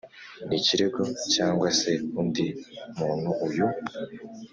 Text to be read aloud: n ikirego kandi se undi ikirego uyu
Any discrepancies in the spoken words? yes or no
yes